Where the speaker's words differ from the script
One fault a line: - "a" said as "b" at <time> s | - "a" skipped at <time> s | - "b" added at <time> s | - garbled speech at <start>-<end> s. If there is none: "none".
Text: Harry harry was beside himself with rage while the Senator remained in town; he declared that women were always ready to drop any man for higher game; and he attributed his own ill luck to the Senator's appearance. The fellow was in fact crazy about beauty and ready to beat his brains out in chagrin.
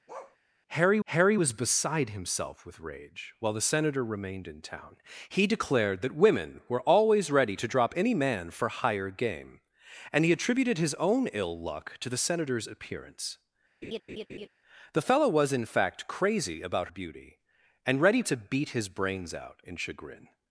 none